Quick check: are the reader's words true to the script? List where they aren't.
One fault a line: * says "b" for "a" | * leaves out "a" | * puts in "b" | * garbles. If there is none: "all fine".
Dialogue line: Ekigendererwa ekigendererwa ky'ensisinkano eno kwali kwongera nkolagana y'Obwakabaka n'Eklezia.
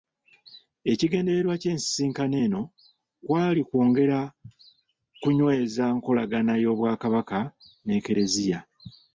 * leaves out "ekigendererwa"
* puts in "kunyweza"